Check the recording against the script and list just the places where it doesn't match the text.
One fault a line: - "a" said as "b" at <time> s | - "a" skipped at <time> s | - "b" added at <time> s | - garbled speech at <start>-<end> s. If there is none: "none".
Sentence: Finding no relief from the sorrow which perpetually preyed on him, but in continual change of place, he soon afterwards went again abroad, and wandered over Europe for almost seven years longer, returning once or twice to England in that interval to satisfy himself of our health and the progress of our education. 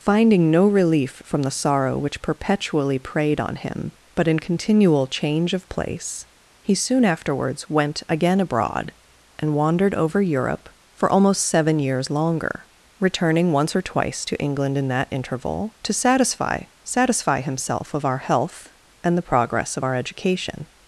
- "satisfy" added at 16.8 s